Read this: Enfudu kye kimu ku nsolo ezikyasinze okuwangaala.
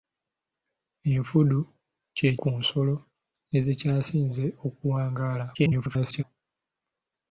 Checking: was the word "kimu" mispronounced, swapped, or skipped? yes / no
yes